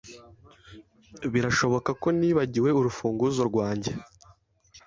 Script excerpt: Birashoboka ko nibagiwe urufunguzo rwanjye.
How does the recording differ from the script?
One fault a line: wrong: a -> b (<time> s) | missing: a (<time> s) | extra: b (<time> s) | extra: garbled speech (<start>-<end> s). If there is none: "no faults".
no faults